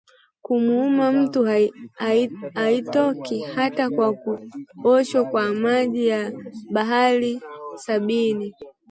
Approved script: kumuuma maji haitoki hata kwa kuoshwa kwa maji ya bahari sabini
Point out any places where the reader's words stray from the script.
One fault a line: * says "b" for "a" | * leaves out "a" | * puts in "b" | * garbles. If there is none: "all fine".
* says "mtu" for "maji"